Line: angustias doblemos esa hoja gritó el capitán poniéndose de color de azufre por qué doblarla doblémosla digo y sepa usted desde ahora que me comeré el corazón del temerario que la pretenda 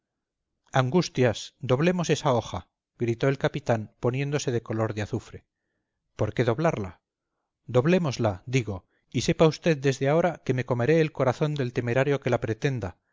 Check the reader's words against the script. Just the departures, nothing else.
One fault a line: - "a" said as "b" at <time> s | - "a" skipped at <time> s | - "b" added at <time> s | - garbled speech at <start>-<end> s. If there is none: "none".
none